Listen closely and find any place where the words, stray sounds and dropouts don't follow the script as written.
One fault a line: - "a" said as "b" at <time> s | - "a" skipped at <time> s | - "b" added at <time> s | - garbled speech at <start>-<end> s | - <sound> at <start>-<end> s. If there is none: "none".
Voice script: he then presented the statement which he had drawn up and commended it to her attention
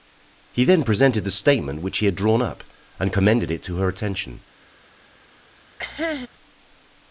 - cough at 5.8-6.3 s